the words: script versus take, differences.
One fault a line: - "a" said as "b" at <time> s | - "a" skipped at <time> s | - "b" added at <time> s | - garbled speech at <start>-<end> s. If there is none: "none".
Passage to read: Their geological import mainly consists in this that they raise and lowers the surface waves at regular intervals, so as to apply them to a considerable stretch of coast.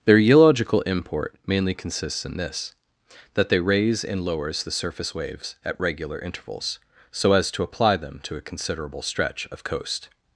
none